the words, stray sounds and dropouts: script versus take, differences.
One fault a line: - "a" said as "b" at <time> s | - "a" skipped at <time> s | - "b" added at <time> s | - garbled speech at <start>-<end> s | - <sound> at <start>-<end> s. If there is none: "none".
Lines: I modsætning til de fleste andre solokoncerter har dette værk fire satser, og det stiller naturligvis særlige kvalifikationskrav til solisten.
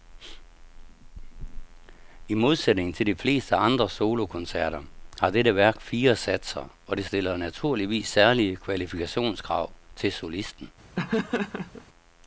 - laugh at 11.0-11.9 s